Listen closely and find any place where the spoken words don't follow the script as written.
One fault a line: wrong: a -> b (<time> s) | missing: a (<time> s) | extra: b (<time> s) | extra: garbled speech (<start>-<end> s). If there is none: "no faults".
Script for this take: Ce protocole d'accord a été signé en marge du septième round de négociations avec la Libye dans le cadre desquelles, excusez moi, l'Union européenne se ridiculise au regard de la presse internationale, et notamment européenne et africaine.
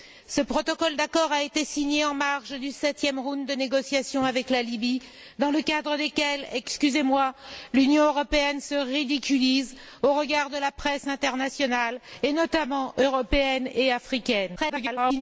extra: garbled speech (14.6-15.2 s)